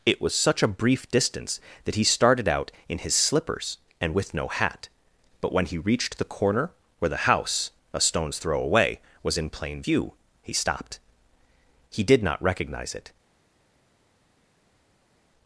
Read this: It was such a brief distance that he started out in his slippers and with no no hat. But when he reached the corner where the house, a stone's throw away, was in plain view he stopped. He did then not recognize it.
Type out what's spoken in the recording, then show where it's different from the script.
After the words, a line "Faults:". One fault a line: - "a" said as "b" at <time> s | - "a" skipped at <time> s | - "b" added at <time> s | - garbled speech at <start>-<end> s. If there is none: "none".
It was such a brief distance that he started out in his slippers and with no hat. But when he reached the corner where the house, a stone's throw away, was in plain view he stopped. He did not recognize it.
Faults:
- "no" skipped at 4.5 s
- "then" skipped at 12.2 s